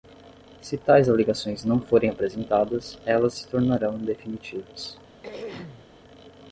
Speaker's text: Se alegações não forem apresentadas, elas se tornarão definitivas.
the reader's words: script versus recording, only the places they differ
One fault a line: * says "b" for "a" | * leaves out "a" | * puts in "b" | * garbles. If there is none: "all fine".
* puts in "tais"